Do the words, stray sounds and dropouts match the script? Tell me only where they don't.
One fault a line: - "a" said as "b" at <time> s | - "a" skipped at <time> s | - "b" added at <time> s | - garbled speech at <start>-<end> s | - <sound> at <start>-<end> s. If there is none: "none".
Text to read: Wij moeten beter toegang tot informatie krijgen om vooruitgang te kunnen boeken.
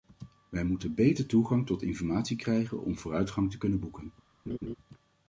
- laugh at 4.5-4.7 s